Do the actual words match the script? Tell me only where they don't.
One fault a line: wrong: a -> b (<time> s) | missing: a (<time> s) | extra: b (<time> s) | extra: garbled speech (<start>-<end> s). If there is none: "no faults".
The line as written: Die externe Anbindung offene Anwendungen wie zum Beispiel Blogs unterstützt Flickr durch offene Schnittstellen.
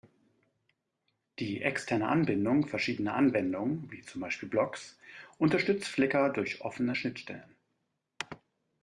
wrong: offene -> verschiedener (2.6 s)